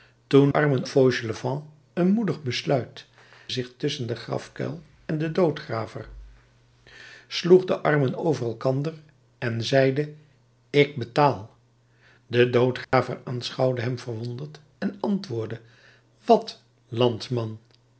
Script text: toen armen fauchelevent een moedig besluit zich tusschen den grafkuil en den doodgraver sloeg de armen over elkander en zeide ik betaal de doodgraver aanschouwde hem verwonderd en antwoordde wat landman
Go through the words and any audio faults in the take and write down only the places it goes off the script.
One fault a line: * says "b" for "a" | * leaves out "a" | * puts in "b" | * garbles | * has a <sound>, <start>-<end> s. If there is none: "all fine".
* has a dropout, 12.8-12.9 s